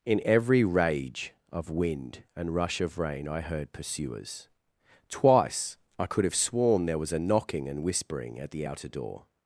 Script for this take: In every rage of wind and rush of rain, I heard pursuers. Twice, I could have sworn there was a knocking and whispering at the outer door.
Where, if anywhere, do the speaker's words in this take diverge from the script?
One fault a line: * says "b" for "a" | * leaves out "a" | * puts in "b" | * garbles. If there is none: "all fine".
all fine